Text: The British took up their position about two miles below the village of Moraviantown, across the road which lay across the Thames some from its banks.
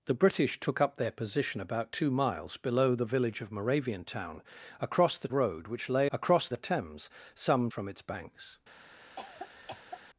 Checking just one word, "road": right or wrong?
right